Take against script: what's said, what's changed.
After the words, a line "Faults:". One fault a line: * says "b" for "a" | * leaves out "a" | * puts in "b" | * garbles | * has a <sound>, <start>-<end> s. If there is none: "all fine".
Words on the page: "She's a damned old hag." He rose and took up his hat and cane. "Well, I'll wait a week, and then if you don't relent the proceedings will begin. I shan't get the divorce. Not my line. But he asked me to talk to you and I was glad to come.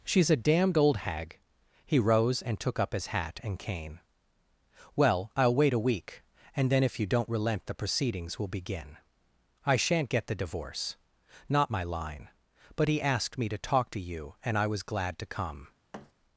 "She's a damned old hag." He rose and took up his hat and cane. "Well, I'll wait a week, and then if you don't relent the proceedings will begin. I shan't get the divorce. Not my line. But he asked me to talk to you and I was glad to come.
Faults:
* has a thud, 15.9-16.1 s